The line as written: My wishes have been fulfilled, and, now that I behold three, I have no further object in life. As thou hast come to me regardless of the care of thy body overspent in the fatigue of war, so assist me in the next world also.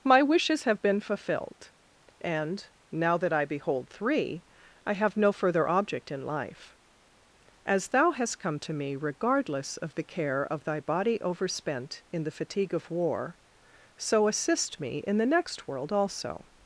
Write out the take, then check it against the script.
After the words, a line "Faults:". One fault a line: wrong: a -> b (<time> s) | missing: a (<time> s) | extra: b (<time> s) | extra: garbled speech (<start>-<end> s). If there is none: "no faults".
My wishes have been fulfilled, and, now that I behold three, I have no further object in life. As thou hast come to me regardless of the care of thy body overspent in the fatigue of war, so assist me in the next world also.
Faults:
no faults